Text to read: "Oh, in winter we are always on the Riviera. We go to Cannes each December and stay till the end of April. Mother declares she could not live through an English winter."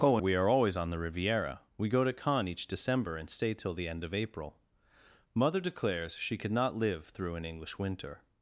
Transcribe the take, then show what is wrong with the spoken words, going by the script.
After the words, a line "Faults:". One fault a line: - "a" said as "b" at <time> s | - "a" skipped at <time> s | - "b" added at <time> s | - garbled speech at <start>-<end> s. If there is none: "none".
"Oh, we are always on the Riviera. We go to Cannes each December and stay till the end of April. Mother declares she could not live through an English winter."
Faults:
- "in winter" skipped at 0.2 s